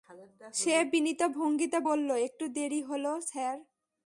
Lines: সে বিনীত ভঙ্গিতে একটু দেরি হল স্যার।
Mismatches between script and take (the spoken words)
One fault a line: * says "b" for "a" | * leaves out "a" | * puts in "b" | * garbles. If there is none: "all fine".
* puts in "বলল"